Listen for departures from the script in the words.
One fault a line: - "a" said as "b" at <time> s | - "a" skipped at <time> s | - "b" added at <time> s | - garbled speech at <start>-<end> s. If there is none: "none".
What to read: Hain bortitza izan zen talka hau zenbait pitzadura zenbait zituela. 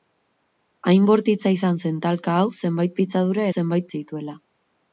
none